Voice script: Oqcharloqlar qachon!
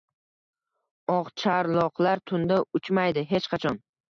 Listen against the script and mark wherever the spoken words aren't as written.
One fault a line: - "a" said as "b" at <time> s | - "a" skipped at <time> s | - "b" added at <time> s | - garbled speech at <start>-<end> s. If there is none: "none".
- "tunda uchmaydi Hech" added at 2.3 s